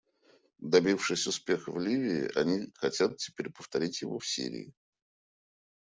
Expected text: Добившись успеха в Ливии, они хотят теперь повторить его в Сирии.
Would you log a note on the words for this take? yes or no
no